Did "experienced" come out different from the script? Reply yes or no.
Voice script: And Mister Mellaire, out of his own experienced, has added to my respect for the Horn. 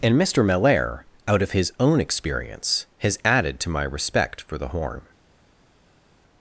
yes